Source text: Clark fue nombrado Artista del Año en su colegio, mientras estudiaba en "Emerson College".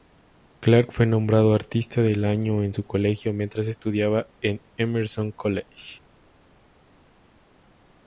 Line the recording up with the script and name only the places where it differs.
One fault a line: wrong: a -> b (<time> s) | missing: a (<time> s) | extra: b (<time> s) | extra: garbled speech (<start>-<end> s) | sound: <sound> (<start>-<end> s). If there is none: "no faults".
no faults